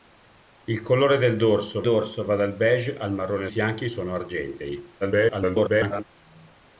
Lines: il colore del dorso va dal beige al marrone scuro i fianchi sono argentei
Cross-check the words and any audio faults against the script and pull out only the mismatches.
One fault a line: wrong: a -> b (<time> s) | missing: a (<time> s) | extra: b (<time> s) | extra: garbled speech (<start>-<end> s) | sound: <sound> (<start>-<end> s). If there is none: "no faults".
extra: dorso (1.8 s)
missing: scuro i (3.5 s)
extra: garbled speech (5.0-6.0 s)